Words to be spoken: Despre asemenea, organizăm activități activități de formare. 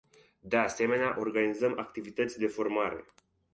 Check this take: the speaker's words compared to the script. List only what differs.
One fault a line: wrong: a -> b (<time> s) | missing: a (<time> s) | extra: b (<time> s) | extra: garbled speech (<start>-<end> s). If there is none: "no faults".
wrong: Despre -> De (0.4 s)
missing: activități (2.4 s)